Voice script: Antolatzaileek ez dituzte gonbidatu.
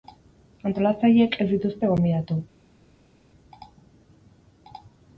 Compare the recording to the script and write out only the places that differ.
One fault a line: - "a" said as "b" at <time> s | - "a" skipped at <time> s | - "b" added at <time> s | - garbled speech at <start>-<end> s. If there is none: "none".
none